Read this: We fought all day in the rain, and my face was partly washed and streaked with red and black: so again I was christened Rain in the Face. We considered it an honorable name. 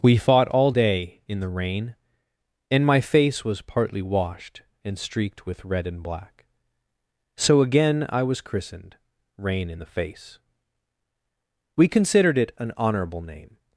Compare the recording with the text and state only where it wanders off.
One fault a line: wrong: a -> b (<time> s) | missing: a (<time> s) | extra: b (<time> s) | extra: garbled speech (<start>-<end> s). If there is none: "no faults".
no faults